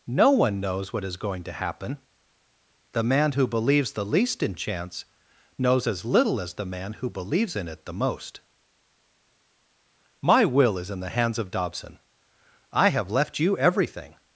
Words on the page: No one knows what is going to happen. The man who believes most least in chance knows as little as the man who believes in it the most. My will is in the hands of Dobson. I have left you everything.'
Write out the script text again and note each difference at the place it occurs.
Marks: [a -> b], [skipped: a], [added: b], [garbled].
No one knows what is going to happen. The man who believes [most -> the] least in chance knows as little as the man who believes in it the most. My will is in the hands of Dobson. I have left you everything.'